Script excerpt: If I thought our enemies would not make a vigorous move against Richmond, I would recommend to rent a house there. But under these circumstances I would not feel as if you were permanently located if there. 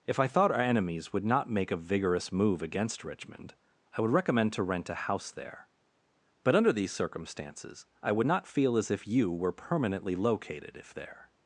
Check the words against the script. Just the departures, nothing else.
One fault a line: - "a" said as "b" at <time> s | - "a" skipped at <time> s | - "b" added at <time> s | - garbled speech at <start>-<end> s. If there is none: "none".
none